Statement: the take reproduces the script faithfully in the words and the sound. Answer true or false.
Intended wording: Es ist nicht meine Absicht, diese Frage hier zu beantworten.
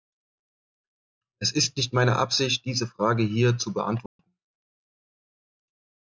false